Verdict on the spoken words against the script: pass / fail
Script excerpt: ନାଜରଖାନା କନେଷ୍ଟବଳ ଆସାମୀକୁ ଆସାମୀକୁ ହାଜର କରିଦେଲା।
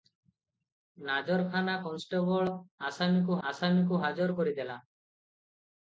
pass